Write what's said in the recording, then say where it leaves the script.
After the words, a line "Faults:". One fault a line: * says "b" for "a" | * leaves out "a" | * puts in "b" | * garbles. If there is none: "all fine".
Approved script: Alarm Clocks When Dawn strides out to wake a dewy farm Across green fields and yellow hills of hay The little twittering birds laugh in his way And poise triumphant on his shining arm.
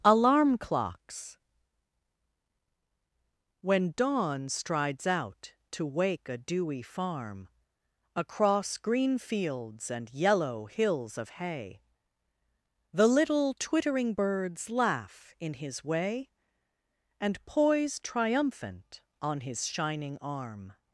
Alarm Clocks When Dawn strides out to wake a dewy farm Across green fields and yellow hills of hay The little twittering birds laugh in his way And poise triumphant on his shining arm.
Faults:
all fine